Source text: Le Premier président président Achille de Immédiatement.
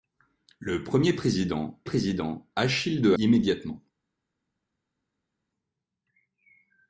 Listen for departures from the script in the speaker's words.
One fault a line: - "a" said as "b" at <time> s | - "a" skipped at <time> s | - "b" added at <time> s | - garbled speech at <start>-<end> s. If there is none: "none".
none